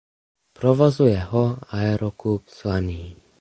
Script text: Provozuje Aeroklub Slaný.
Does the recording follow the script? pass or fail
fail